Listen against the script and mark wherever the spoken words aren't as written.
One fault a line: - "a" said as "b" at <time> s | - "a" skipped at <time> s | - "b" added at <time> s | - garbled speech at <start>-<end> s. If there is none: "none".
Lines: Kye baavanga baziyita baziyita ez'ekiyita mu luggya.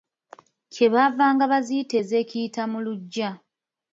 - "baziyita" skipped at 1.9 s